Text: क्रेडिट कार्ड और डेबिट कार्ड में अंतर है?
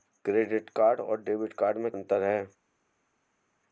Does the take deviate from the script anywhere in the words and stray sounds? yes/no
no